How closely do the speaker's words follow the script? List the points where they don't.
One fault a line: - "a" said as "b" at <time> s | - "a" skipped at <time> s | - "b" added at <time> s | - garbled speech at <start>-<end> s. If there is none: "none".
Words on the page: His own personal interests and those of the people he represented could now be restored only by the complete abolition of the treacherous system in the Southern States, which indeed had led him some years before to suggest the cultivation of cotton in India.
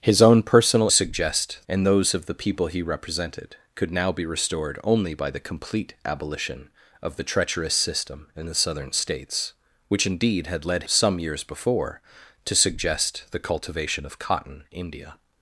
- "interests" said as "suggest" at 0.9 s
- "him" skipped at 10.8 s
- "in" skipped at 14.6 s